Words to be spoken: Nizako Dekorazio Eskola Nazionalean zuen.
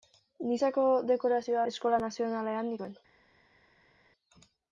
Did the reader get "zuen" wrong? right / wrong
right